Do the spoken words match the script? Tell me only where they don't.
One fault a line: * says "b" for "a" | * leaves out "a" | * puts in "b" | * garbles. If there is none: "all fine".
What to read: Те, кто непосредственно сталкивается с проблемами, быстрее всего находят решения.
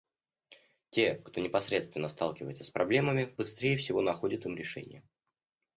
* puts in "им"